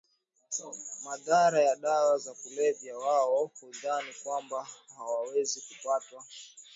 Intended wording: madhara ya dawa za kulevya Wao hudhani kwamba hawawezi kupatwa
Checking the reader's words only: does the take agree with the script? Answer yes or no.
yes